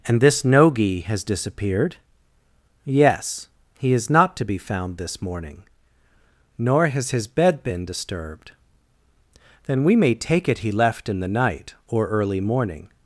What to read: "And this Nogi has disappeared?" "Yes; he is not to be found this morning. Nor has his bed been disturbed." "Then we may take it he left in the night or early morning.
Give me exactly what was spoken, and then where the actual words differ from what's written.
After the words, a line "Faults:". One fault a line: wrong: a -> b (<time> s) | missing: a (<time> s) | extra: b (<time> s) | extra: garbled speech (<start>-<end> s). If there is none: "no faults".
"And this Nogi has disappeared?" "Yes; he is not to be found this morning. Nor has his bed been disturbed." "Then we may take it he left in the night or early morning.
Faults:
no faults